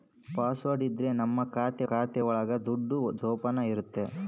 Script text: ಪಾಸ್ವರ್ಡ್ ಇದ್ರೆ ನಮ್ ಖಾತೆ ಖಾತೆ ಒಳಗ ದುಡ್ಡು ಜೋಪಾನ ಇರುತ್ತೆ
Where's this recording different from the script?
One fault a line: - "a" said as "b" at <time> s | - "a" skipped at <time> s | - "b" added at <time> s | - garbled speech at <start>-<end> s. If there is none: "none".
none